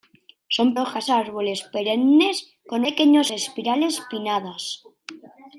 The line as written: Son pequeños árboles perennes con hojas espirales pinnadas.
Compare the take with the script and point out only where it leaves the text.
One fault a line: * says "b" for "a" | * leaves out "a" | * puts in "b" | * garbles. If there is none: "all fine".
* says "hojas" for "pequeños"
* says "pequeños" for "hojas"